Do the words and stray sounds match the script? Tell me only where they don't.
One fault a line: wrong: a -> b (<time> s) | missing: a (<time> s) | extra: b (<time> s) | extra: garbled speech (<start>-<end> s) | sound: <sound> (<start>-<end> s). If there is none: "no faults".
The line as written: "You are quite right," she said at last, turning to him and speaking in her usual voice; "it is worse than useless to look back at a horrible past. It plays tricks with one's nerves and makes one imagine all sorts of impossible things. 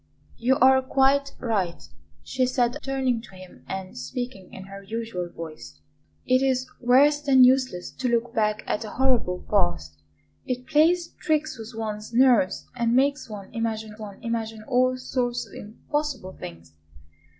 missing: at last (2.8 s)
extra: one imagine (14.0 s)